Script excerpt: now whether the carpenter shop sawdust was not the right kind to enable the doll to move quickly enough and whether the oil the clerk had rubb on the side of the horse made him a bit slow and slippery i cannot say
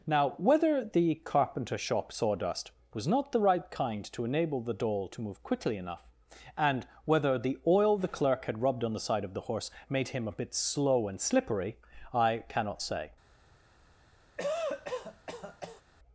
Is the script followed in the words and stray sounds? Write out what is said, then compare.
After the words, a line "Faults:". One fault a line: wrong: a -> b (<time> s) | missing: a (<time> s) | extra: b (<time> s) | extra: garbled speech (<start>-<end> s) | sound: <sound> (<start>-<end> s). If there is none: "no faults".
now whether the carpenter shop sawdust was not the right kind to enable the doll to move quickly enough and whether the oil the clerk had rubbed on the side of the horse made him a bit slow and slippery i cannot say
Faults:
wrong: rubb -> rubbed (8.6 s)
sound: cough (14.4-15.8 s)